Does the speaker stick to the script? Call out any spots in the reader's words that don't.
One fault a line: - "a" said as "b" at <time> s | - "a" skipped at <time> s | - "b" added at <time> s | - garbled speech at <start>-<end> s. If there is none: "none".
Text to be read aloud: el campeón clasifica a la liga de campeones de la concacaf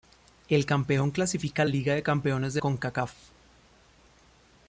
- "la" skipped at 1.6 s
- "la" skipped at 2.6 s